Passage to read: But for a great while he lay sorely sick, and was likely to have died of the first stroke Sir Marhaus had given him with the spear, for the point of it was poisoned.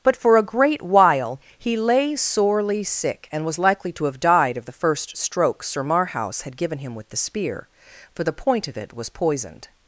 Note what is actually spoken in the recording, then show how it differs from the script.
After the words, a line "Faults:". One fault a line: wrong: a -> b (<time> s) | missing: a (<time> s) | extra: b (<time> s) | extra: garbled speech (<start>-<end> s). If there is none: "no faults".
But for a great while he lay sorely sick, and was likely to have died of the first stroke Sir Marhaus had given him with the spear, for the point of it was poisoned.
Faults:
no faults